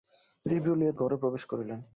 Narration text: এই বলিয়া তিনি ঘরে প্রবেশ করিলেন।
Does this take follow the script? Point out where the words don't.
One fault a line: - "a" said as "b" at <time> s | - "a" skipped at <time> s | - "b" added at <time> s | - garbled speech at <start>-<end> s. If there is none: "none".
- "তিনি" skipped at 0.9 s